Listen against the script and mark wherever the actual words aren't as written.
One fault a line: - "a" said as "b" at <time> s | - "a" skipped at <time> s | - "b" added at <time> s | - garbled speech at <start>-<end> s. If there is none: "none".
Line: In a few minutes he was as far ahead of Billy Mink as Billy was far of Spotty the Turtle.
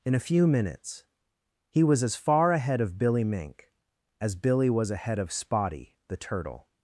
- "far" said as "ahead" at 4.9 s